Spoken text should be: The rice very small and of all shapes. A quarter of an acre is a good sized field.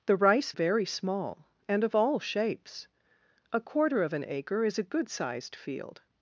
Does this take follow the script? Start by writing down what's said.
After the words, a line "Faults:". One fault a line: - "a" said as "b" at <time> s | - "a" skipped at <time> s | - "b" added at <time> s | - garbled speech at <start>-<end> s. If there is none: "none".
The rice very small and of all shapes. A quarter of an acre is a good sized field.
Faults:
none